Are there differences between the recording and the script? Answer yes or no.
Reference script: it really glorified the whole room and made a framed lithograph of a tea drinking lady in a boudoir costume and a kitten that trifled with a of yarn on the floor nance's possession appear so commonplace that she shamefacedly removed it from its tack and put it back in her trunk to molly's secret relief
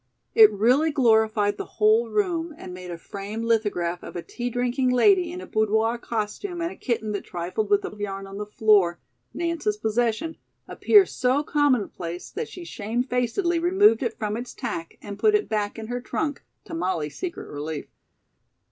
no